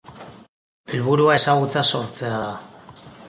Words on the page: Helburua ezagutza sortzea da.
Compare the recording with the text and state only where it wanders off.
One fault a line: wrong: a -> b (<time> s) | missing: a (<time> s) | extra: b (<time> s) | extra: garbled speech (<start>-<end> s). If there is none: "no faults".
no faults